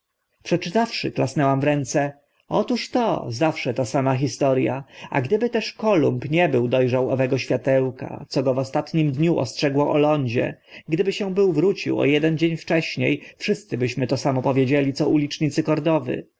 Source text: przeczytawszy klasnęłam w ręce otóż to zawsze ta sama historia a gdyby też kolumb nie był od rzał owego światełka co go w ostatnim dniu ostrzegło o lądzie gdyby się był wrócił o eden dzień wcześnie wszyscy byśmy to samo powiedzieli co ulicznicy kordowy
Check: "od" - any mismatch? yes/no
yes